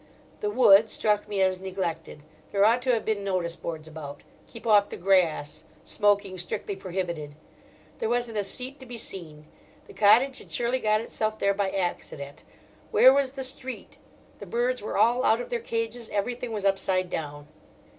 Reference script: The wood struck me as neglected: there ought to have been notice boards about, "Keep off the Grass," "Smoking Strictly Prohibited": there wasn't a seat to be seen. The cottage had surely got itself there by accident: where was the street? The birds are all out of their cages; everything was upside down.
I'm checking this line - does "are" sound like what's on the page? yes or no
no